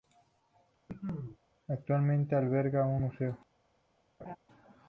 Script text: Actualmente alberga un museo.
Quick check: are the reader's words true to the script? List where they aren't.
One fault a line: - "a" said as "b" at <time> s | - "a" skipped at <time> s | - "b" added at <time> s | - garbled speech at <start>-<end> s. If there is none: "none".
none